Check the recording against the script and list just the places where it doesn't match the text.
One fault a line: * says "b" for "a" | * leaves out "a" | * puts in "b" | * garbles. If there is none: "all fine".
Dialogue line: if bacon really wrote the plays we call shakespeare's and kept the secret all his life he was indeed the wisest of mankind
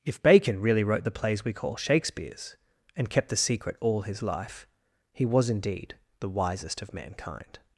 all fine